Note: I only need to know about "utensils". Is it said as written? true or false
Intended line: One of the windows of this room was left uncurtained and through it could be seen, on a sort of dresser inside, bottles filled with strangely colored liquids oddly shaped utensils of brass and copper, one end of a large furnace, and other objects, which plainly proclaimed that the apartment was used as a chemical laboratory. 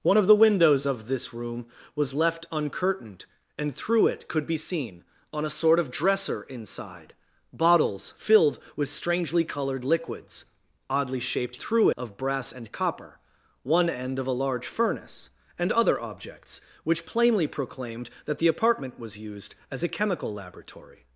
false